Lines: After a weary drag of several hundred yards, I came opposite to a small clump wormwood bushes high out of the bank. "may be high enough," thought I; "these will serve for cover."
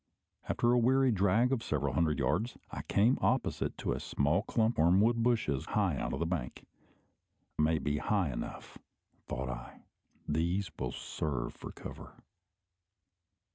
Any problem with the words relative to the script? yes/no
no